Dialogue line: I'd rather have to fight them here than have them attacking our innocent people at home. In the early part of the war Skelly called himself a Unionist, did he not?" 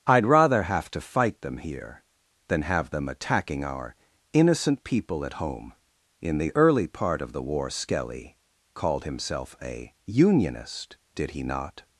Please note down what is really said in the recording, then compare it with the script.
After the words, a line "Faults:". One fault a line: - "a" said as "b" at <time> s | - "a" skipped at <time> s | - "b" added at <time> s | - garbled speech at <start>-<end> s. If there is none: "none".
I'd rather have to fight them here than have them attacking our innocent people at home. In the early part of the war Skelly called himself a Unionist, did he not?"
Faults:
none